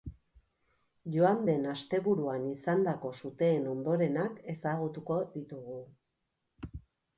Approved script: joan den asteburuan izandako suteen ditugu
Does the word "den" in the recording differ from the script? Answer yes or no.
no